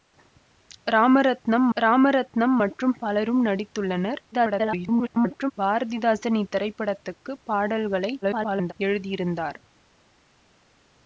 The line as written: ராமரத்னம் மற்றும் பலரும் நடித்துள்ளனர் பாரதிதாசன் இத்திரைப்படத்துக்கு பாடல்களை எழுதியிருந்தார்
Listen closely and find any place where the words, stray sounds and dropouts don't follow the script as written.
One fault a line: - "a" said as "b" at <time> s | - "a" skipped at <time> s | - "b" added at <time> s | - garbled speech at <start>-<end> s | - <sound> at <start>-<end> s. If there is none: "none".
- "ராமரத்னம்" added at 1.8 s
- garbled speech at 4.3-5.5 s
- garbled speech at 8.2-8.7 s